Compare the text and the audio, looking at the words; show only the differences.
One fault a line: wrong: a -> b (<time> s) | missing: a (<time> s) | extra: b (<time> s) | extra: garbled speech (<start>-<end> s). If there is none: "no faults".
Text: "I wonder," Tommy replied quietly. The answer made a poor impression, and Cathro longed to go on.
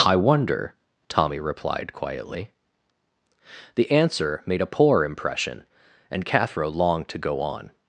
no faults